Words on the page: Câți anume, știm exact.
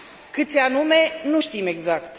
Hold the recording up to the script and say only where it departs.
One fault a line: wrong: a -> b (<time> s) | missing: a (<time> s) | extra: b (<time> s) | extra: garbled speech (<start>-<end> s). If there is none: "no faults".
extra: nu (1.2 s)